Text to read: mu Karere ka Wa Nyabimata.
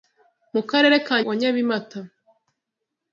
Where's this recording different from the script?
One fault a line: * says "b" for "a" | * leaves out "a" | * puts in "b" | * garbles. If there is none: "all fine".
all fine